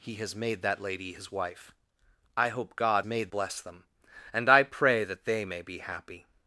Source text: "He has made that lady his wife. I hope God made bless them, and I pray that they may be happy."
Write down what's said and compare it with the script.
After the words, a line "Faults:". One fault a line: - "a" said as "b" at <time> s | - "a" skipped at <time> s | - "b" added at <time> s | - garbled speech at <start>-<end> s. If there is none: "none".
"He has made that lady his wife. I hope God made bless them, and I pray that they may be happy."
Faults:
none